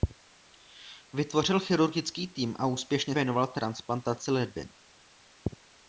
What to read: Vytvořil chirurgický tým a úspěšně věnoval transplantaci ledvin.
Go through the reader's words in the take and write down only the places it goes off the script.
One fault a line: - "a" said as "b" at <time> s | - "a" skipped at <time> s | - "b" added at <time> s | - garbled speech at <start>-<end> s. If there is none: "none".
none